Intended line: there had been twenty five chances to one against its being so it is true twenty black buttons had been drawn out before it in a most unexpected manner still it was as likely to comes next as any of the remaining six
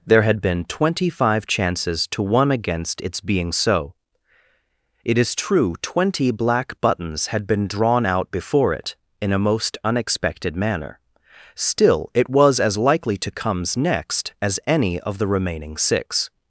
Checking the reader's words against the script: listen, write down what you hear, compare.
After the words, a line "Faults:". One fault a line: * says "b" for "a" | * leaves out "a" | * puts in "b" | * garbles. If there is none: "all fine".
there had been twenty five chances to one against its being so it is true twenty black buttons had been drawn out before it in a most unexpected manner still it was as likely to comes next as any of the remaining six
Faults:
all fine